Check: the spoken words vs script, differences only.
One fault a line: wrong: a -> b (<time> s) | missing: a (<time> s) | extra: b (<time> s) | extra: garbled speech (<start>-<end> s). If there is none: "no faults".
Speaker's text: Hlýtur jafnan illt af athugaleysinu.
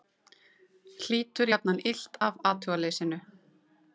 no faults